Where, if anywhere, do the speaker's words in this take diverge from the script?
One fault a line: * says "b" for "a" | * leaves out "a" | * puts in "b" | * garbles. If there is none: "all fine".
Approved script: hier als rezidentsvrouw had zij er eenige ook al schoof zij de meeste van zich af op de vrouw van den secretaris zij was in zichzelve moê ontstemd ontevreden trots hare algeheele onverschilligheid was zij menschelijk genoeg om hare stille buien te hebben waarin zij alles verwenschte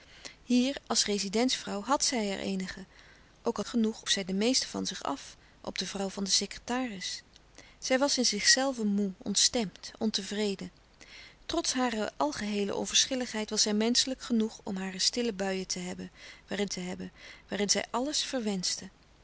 * says "genoeg" for "schoof"
* puts in "te hebben waarin"